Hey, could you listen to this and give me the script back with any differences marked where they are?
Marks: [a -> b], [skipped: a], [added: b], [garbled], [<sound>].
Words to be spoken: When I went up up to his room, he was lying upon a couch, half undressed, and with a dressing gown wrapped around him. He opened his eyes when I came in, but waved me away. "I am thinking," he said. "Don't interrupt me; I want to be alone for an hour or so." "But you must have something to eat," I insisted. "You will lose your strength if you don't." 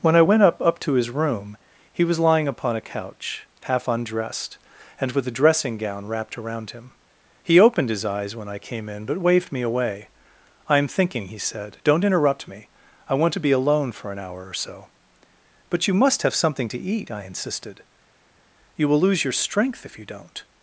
When I went up up to his room, he was lying upon a couch, half undressed, and with a dressing gown wrapped around him. He opened his eyes when I came in, but waved me away. "I am thinking," he said. "Don't interrupt me; I want to be alone for an hour or so." "But you must have something to eat," I insisted. "You will lose your strength if you don't."